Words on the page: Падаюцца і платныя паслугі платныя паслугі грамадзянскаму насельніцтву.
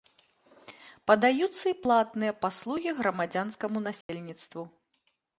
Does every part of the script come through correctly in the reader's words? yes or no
no